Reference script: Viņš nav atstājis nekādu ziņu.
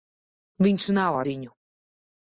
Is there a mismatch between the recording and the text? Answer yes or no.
yes